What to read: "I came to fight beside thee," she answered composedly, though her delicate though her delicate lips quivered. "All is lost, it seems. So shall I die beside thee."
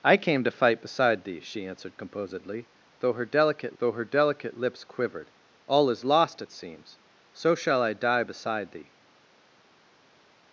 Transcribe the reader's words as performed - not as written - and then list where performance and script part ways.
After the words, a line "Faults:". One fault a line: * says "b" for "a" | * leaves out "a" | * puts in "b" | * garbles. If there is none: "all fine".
"I came to fight beside thee," she answered composedly, though her delicate though her delicate lips quivered. "All is lost, it seems. So shall I die beside thee."
Faults:
all fine